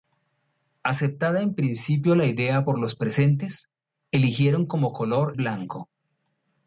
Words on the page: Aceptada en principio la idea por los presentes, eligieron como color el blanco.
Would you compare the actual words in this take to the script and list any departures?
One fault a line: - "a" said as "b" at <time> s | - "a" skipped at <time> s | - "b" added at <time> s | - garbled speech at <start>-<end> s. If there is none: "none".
- "el" skipped at 5.3 s